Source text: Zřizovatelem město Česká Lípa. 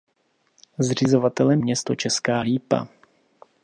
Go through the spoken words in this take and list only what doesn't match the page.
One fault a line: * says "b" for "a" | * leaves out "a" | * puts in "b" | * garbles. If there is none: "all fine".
all fine